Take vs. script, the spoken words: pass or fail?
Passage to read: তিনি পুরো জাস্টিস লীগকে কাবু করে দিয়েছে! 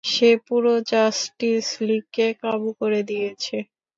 fail